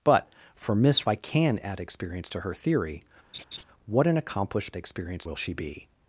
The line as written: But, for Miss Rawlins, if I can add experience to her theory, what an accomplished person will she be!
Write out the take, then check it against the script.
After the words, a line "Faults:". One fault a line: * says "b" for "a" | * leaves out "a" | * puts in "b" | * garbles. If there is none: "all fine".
But, for Miss I can add experience to her theory, what an accomplished experience will she be!
Faults:
* leaves out "Rawlins if"
* says "experience" for "person"